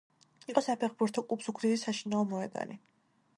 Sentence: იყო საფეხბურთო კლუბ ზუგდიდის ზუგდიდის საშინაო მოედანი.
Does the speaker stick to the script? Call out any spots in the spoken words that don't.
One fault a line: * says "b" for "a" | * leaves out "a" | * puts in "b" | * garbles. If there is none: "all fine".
* leaves out "ზუგდიდის"